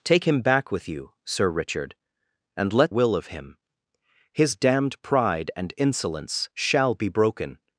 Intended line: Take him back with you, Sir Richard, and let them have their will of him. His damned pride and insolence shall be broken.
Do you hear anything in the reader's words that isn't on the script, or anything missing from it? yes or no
yes